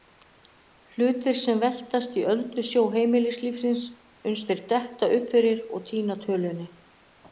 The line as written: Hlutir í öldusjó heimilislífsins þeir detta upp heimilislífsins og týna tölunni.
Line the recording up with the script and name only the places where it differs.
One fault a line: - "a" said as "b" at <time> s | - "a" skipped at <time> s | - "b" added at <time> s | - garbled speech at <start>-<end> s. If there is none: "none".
- "sem veltast" added at 1.4 s
- "uns" added at 4.3 s
- "heimilislífsins" said as "fyrir" at 5.3 s